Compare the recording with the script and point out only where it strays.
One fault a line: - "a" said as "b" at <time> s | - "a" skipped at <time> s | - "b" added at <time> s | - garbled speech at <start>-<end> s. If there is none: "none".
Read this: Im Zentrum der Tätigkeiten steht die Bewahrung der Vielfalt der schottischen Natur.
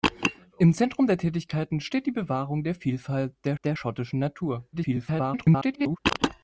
- "der" added at 3.6 s
- garbled speech at 4.7-6.0 s